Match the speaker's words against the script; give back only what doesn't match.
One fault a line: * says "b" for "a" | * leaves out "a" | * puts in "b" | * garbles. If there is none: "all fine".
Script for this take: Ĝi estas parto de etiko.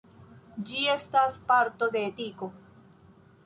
all fine